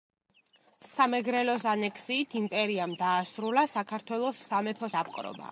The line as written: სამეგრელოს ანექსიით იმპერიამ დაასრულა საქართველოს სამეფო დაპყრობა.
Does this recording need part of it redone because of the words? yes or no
no